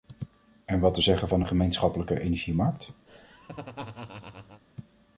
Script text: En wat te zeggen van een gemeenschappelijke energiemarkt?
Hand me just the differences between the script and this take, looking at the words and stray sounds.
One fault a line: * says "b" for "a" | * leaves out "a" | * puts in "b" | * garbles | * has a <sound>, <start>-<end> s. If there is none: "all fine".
* has a laugh, 3.1-4.6 s